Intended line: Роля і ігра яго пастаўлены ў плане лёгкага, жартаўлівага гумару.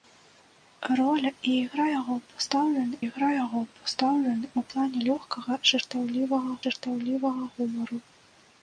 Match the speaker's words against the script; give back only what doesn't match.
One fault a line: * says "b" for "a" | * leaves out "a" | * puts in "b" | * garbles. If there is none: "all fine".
* puts in "ігра яго пастаўлены"
* puts in "жартаўлівага"